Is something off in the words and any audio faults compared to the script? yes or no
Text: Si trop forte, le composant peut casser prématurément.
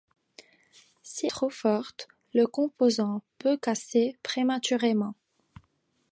no